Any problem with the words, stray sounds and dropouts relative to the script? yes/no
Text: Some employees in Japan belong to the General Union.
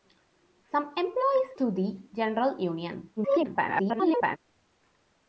yes